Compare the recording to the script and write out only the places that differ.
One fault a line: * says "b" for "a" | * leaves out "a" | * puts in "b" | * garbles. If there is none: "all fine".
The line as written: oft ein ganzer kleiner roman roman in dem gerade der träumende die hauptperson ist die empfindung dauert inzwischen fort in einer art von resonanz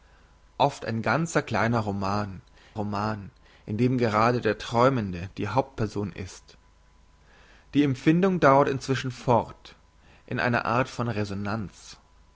all fine